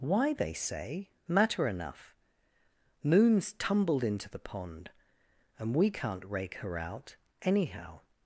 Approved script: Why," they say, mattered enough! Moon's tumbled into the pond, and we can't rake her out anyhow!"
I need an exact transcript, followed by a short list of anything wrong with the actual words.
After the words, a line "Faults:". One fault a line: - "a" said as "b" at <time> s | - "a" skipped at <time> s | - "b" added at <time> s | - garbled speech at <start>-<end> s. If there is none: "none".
Why," they say, matter enough! Moon's tumbled into the pond, and we can't rake her out anyhow!"
Faults:
- "mattered" said as "matter" at 1.3 s